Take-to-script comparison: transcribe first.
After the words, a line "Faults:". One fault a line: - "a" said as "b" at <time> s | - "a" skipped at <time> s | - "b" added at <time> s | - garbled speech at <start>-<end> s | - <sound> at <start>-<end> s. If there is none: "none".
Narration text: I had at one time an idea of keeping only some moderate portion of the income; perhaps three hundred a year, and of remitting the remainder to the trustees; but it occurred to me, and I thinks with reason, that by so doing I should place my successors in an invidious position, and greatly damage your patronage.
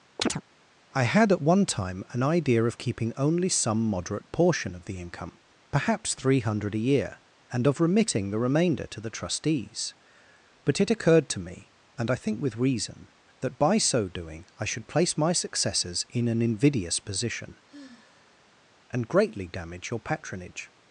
I had at one time an idea of keeping only some moderate portion of the income; perhaps three hundred a year, and of remitting the remainder to the trustees; but it occurred to me, and I think with reason, that by so doing I should place my successors in an invidious position, and greatly damage your patronage.
Faults:
- chirp at 0.2-0.4 s
- "thinks" said as "think" at 12.2 s
- sigh at 17.7-18.7 s